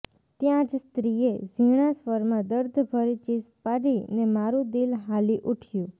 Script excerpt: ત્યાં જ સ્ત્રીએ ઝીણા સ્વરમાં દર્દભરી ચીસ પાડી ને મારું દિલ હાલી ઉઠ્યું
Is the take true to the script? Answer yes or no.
yes